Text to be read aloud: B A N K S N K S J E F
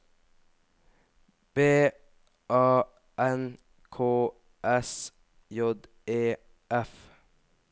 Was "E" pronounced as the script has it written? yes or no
yes